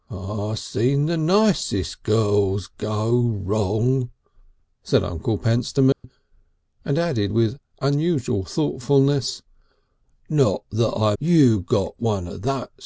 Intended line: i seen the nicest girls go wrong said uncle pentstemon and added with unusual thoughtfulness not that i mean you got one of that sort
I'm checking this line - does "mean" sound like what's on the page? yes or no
no